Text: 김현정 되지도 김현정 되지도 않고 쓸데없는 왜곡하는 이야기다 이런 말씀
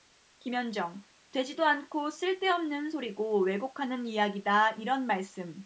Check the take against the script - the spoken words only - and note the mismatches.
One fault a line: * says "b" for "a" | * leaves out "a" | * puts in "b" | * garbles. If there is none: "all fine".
* leaves out "김현정 되지도"
* puts in "소리고"